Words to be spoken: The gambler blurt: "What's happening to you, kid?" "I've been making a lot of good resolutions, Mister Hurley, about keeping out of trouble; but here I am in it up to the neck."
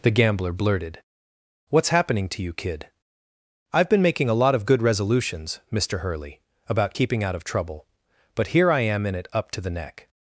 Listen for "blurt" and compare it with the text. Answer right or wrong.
wrong